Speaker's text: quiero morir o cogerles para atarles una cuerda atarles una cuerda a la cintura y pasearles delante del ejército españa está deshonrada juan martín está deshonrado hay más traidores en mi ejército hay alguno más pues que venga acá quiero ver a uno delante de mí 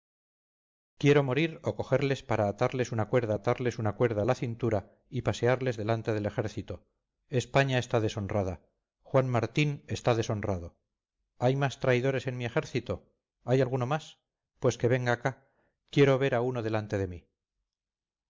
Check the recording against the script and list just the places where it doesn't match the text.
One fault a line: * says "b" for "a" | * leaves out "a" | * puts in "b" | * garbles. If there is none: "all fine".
all fine